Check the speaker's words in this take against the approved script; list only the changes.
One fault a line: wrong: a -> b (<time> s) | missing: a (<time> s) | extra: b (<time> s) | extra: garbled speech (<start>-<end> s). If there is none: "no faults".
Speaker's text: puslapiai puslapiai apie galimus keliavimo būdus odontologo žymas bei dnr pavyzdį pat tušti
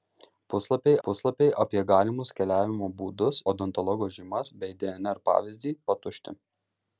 no faults